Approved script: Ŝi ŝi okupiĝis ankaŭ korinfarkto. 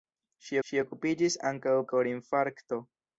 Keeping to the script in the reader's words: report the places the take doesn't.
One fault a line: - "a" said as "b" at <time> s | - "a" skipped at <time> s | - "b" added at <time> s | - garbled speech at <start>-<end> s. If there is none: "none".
none